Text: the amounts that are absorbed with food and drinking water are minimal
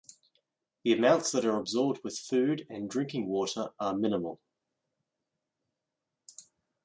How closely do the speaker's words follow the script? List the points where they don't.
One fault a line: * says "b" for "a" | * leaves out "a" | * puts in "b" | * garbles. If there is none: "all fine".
all fine